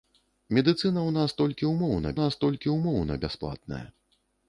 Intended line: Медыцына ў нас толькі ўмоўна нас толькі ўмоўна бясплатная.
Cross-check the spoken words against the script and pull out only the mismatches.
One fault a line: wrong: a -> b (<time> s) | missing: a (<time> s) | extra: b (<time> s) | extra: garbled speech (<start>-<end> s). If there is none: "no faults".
no faults